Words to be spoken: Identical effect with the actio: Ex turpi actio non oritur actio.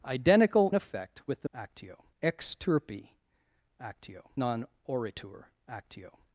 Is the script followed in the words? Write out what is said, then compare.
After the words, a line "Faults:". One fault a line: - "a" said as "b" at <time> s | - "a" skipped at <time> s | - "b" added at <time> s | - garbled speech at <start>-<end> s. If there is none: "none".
Identical effect with the actio: Ex turpi actio non oritur actio.
Faults:
none